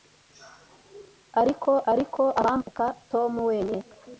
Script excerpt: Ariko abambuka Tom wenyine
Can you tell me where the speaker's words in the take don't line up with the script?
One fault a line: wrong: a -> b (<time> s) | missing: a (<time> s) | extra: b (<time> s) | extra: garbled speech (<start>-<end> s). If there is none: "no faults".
extra: ariko (1.9 s)